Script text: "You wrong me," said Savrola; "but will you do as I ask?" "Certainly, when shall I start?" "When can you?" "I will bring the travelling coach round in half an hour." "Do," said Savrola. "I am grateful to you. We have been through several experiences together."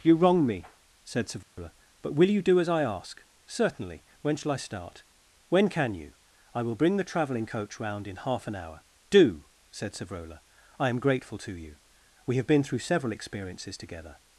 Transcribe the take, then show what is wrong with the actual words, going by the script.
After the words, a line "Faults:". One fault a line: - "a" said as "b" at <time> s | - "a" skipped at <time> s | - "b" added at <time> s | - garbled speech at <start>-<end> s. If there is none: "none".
"You wrong me," said Savrola; "but will you do as I ask?" "Certainly, when shall I start?" "When can you?" "I will bring the travelling coach round in half an hour." "Do," said Savrola. "I am grateful to you. We have been through several experiences together."
Faults:
none